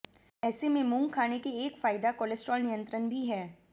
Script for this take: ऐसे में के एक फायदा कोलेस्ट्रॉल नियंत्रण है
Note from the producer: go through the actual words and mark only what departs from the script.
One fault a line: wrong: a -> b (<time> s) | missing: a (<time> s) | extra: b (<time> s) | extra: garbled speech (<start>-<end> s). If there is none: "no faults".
extra: मूंग खाने (0.8 s)
extra: भी (3.1 s)